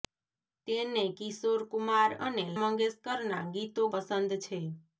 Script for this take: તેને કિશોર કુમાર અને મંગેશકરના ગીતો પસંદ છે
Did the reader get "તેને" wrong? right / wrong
right